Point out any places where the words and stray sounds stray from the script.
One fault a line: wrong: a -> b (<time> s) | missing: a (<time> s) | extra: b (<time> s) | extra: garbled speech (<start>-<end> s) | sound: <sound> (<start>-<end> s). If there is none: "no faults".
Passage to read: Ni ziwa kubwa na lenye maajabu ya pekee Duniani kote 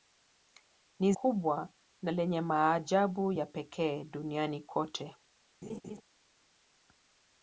missing: ziwa (1.1 s)
sound: laugh (5.6-6.0 s)